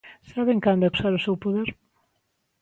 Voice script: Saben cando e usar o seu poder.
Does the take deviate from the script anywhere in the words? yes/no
no